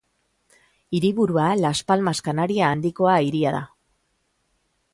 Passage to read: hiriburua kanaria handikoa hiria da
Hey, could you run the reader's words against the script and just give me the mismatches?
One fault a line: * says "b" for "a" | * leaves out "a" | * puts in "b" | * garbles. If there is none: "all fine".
* puts in "las palmas"